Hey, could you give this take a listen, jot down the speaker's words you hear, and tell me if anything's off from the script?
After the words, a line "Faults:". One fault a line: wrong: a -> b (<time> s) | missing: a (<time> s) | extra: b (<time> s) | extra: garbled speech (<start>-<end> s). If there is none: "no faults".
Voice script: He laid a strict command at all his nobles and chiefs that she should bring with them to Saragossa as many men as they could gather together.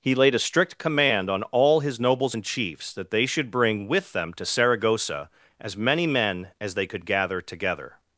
He laid a strict command on all his nobles and chiefs that they should bring with them to Saragossa as many men as they could gather together.
Faults:
wrong: at -> on (1.3 s)
wrong: she -> they (3.1 s)